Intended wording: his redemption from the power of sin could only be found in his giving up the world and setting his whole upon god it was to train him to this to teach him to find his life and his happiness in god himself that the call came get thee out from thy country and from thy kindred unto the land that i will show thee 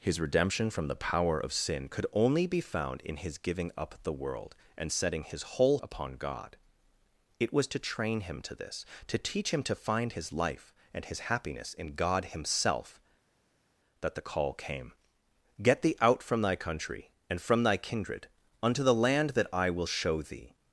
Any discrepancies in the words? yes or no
no